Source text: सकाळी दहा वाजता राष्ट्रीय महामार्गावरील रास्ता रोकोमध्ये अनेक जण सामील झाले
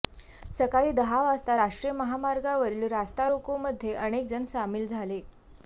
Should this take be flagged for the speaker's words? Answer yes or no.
no